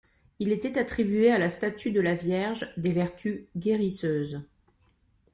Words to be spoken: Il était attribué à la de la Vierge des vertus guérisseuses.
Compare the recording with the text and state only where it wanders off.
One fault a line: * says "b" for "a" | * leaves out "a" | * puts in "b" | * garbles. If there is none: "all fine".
* puts in "statue"